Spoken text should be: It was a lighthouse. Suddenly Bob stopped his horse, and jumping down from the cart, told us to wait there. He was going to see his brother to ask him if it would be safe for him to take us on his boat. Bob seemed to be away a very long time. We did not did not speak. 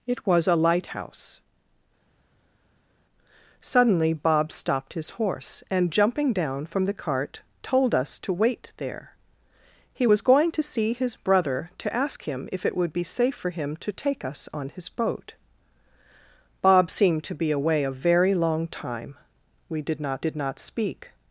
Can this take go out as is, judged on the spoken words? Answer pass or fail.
pass